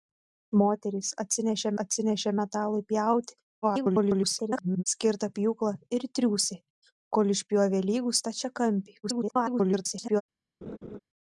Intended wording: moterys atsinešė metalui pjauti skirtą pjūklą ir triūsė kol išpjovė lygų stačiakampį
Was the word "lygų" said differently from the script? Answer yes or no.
no